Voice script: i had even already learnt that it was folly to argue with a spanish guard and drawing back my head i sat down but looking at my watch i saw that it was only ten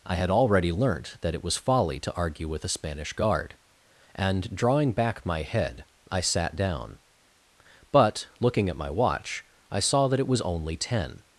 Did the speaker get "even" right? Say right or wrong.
wrong